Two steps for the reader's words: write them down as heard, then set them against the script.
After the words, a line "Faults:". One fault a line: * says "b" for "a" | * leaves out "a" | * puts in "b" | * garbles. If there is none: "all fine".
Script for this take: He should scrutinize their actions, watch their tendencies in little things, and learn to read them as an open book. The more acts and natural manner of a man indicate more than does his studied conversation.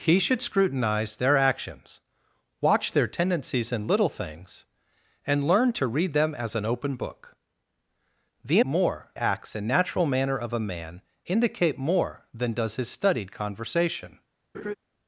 He should scrutinize their actions, watch their tendencies in little things, and learn to read them as an open book. The more acts and natural manner of a man indicate more than does his studied conversation.
Faults:
all fine